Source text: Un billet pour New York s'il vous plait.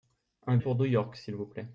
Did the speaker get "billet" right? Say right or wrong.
wrong